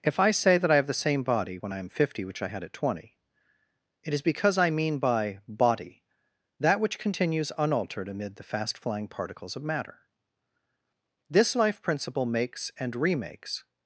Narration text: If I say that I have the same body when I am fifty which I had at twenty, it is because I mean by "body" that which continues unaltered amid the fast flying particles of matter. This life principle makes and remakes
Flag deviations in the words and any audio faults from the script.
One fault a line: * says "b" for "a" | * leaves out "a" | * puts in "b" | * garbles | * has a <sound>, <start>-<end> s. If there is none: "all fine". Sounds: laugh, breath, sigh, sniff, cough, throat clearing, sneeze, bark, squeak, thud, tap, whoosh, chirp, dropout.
all fine